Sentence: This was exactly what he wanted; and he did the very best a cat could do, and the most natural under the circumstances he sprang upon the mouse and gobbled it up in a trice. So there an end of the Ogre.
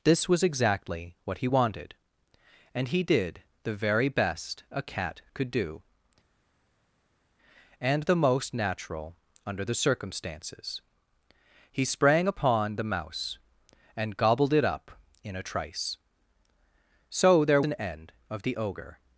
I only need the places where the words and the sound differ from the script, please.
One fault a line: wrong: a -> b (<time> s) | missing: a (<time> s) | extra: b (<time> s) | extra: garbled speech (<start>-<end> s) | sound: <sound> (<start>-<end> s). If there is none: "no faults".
no faults